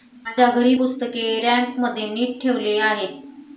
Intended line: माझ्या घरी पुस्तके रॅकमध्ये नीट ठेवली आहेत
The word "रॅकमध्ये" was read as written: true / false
true